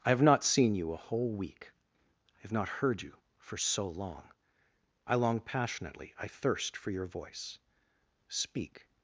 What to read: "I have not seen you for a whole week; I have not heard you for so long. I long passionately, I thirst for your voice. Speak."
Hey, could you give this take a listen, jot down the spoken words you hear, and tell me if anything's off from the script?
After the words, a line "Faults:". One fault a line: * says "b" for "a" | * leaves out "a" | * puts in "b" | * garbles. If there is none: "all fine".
"I have not seen you a whole week; I have not heard you for so long. I long passionately, I thirst for your voice. Speak."
Faults:
* leaves out "for"